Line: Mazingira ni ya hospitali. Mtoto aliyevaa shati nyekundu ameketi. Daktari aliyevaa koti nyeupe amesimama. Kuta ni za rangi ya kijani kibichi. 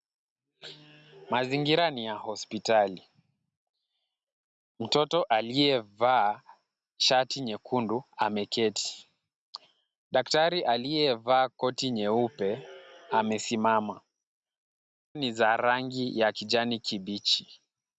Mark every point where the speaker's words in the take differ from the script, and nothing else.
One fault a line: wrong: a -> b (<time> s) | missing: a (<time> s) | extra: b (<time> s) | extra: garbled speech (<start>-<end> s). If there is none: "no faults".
missing: Kuta (14.0 s)